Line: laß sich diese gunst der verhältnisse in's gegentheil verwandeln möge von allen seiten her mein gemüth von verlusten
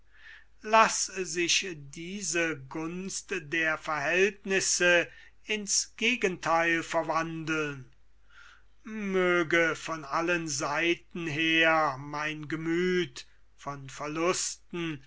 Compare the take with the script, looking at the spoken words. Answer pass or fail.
pass